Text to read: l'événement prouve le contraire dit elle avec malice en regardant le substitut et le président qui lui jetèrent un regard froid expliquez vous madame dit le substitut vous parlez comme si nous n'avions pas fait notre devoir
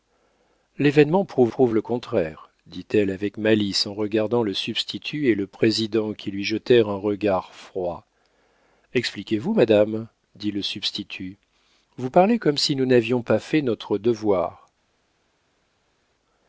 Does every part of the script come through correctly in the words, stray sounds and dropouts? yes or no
no